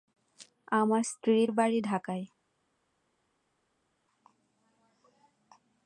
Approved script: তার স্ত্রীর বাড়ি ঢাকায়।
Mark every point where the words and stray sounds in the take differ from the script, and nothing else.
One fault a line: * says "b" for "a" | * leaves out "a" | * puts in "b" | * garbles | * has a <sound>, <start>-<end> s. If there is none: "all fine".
* says "আমার" for "তার"